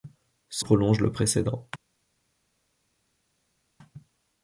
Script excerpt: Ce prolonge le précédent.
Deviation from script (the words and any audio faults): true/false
false